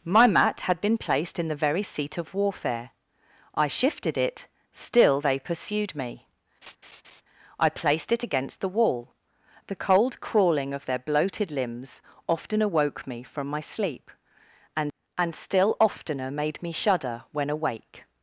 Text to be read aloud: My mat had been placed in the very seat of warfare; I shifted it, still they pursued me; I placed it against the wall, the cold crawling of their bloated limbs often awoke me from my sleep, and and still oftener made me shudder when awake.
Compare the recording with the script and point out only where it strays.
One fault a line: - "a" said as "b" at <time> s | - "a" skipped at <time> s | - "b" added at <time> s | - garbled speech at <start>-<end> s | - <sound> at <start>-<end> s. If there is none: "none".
- laugh at 6.6-7.2 s